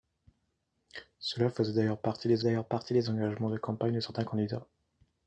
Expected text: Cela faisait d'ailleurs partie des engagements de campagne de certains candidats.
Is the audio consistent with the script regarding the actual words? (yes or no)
no